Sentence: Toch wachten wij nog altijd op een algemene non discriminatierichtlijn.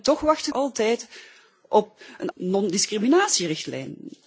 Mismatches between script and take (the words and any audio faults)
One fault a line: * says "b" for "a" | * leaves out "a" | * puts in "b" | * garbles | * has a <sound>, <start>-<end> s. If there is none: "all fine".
* leaves out "wij nog"
* leaves out "algemene"